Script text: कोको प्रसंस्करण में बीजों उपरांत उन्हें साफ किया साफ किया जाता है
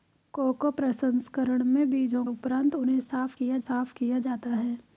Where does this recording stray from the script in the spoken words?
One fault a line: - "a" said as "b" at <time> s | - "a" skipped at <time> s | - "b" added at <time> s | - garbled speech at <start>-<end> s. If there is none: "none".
none